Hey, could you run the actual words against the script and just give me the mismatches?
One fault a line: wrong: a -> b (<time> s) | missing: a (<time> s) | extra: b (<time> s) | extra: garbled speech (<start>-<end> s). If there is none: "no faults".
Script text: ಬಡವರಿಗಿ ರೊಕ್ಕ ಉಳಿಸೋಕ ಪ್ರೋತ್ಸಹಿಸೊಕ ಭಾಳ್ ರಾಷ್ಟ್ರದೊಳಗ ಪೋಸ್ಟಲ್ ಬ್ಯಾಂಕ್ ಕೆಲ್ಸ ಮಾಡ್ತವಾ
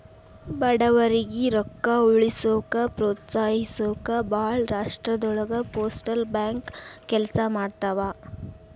no faults